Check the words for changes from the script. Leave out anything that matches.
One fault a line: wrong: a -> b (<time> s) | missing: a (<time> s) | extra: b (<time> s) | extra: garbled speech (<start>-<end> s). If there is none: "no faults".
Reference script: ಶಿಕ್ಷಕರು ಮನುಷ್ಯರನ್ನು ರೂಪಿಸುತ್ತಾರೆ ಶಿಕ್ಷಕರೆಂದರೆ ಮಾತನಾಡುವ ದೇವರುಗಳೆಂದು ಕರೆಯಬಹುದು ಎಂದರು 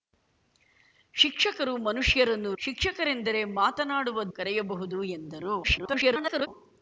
missing: ರೂಪಿಸುತ್ತಾರೆ (2.5 s)
missing: ದೇವರುಗಳೆಂದು (4.2 s)
extra: garbled speech (5.6-6.5 s)